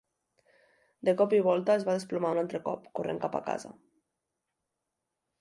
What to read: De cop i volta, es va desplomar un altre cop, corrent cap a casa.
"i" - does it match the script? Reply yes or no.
yes